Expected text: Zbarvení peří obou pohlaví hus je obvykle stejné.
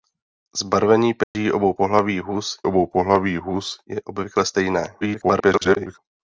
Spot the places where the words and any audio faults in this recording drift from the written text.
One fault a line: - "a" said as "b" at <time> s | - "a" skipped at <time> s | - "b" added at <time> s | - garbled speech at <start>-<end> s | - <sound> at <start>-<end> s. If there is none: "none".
- dropout at 1.2-1.3 s
- "obou pohlaví hus" added at 2.6 s
- garbled speech at 5.0-6.0 s